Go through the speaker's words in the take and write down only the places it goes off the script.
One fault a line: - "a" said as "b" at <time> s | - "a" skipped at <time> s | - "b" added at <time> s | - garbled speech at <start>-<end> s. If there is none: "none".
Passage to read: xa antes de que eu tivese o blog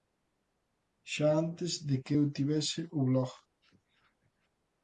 none